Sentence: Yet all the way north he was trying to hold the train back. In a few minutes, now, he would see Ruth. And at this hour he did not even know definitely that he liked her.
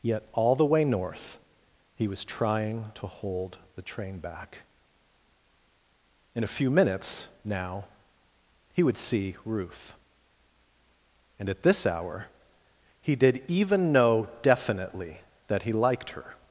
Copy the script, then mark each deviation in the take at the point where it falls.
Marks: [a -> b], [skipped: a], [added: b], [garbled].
Yet all the way north he was trying to hold the train back. In a few minutes, now, he would see Ruth. And at this hour he did [skipped: not] even know definitely that he liked her.